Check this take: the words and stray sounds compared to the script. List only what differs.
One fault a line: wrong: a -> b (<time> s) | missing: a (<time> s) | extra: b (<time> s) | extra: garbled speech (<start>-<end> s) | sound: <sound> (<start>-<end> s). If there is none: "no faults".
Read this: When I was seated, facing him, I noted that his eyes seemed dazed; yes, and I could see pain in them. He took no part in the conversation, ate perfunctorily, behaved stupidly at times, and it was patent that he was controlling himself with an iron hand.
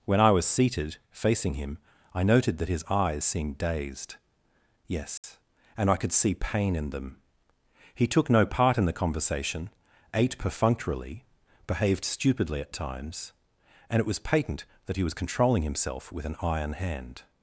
sound: dropout (5.2-5.2 s)